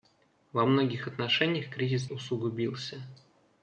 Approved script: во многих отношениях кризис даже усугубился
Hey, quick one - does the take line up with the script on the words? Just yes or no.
no